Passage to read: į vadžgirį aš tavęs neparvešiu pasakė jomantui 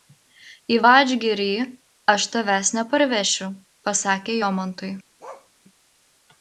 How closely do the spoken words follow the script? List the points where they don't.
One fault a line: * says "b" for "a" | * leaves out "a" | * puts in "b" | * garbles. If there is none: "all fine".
all fine